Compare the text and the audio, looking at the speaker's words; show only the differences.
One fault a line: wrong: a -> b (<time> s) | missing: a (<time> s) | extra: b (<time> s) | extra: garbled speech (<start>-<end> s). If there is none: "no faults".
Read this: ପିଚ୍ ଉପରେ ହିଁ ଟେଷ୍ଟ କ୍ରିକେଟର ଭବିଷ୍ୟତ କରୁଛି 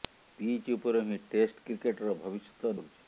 no faults